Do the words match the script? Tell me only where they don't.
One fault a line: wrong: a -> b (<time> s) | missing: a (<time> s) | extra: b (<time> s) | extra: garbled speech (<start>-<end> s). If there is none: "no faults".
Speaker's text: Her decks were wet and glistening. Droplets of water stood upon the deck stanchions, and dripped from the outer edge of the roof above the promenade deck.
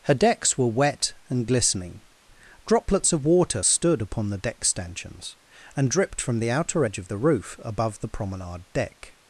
no faults